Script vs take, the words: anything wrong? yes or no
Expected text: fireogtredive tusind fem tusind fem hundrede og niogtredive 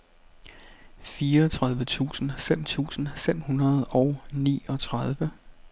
no